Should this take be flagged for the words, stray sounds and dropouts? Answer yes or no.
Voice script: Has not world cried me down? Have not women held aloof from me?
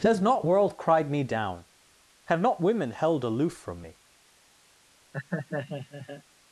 yes